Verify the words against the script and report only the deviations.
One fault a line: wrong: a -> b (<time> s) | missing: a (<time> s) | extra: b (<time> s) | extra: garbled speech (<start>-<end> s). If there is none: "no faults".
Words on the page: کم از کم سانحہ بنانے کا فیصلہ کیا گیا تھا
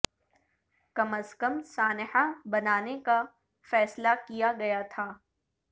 no faults